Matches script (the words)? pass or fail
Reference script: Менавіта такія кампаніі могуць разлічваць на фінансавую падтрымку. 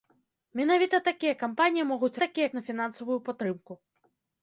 fail